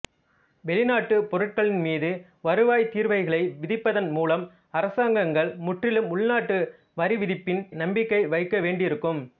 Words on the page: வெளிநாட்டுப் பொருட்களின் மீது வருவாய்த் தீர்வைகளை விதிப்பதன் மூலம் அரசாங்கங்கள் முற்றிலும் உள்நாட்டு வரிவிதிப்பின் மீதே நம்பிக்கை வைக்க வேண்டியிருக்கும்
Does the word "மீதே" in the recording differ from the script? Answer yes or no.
yes